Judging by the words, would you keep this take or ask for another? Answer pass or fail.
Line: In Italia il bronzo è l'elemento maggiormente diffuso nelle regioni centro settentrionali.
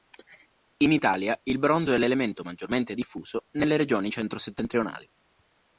pass